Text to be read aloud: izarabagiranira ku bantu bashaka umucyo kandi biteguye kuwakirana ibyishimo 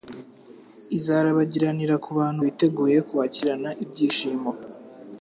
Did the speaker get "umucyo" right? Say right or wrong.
wrong